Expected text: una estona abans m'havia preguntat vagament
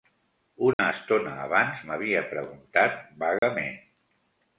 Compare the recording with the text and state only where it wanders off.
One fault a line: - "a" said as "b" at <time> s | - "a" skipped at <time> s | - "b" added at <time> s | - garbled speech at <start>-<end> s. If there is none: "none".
none